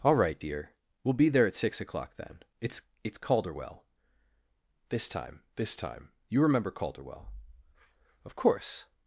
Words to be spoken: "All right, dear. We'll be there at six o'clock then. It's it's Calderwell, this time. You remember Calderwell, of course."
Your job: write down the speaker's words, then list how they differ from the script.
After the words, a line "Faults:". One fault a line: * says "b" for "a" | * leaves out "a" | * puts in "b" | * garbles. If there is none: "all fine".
"All right, dear. We'll be there at six o'clock then. It's it's Calderwell, this time this time. You remember Calderwell, of course."
Faults:
* puts in "this time"